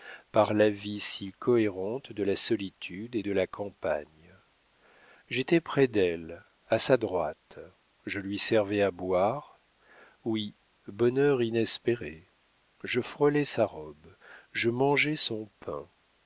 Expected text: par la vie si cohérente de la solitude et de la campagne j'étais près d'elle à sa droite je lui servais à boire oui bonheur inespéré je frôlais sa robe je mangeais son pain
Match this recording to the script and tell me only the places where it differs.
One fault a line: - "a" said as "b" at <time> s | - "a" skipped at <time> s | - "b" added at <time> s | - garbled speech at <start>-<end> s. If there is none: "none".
none